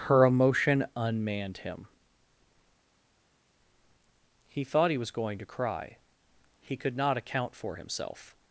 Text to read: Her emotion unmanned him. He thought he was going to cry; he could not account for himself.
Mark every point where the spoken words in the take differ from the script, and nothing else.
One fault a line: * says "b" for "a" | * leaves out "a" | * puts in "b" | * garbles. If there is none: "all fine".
all fine